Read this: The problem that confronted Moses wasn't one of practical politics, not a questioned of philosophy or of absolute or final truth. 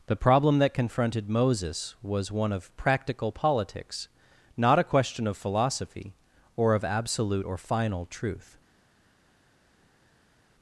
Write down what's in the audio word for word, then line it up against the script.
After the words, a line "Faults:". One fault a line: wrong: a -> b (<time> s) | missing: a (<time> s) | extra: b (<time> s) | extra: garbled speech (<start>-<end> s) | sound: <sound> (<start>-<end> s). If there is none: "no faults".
The problem that confronted Moses was one of practical politics, not a question of philosophy or of absolute or final truth.
Faults:
wrong: wasn't -> was (2.0 s)
wrong: questioned -> question (4.8 s)